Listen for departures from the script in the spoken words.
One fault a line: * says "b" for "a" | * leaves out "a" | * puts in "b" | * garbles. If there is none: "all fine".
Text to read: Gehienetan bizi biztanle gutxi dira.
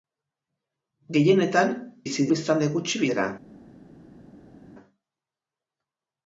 all fine